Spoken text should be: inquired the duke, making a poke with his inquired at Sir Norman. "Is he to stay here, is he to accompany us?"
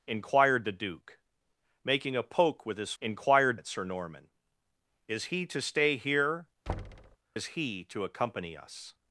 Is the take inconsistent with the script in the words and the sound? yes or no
yes